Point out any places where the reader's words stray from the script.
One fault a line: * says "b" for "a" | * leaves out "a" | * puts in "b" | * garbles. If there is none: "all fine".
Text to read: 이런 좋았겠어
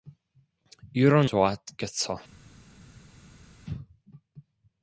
all fine